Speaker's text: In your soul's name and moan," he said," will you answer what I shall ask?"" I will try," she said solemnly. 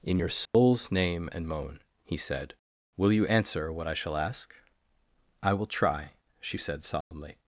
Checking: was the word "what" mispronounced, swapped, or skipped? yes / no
no